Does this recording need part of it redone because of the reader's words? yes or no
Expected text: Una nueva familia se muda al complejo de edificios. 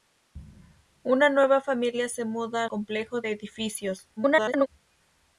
yes